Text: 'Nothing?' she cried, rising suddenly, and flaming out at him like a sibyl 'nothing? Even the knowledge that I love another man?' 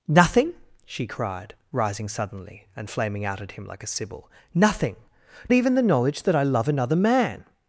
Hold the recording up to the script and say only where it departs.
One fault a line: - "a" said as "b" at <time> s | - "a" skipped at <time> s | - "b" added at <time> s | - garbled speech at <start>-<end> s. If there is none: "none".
none